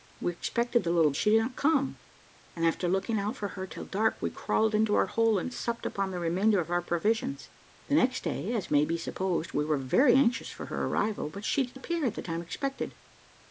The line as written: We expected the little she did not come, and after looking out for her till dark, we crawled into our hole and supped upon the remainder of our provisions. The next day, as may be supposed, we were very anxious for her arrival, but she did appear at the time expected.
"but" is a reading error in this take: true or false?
false